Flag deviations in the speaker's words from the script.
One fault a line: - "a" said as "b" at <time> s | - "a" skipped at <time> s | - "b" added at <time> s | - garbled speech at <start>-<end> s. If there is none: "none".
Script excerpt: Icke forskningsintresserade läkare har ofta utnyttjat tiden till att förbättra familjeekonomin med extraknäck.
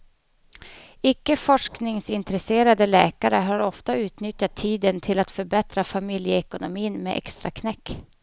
none